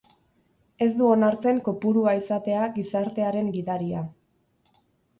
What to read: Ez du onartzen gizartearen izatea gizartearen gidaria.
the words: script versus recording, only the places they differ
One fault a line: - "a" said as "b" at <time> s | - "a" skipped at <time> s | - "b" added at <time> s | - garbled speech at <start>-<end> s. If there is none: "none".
- "gizartearen" said as "kopurua" at 1.7 s